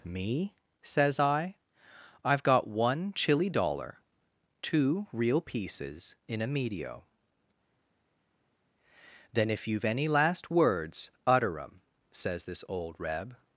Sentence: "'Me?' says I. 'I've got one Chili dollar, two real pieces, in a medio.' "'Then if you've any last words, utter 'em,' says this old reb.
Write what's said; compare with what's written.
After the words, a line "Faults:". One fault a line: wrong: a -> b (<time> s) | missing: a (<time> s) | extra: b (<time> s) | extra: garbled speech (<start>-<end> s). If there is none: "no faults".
"'Me?' says I. 'I've got one Chili dollar, two real pieces, in a medio.' "'Then if you've any last words, utter 'em,' says this old reb.
Faults:
no faults